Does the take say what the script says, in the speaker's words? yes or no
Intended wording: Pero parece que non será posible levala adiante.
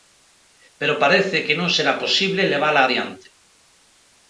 yes